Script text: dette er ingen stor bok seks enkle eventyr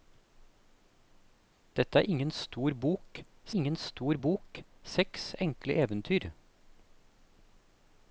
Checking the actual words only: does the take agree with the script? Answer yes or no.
no